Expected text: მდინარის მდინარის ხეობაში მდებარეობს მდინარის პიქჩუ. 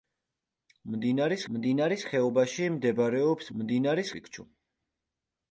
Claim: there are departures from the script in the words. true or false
false